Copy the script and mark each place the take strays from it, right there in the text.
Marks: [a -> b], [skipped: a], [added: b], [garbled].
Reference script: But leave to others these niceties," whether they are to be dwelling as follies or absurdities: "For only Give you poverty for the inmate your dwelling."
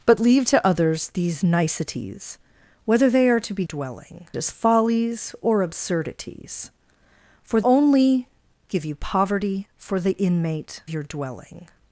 But leave to others these niceties," whether they are to be dwelling as follies or absurdities: "For only Give you poverty for the inmate your dwelling."